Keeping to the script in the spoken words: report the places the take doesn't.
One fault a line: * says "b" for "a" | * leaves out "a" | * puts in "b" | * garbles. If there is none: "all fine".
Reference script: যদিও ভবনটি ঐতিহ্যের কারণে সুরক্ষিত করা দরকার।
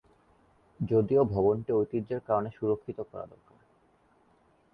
all fine